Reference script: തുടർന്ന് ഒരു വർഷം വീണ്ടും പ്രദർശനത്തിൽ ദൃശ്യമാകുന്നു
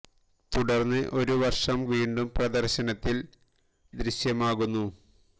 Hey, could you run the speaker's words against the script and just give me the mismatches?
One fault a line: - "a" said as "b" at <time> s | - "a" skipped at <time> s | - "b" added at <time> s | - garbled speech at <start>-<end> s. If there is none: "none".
none